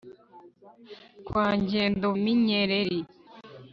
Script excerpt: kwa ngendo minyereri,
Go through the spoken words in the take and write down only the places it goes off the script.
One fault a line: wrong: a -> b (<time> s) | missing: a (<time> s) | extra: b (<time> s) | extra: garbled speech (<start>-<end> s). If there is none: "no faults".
no faults